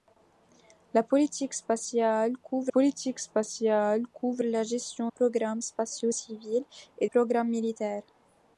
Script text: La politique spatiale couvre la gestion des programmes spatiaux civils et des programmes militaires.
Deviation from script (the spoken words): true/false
true